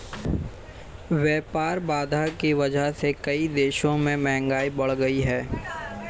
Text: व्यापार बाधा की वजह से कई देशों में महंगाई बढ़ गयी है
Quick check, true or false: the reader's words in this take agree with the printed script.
true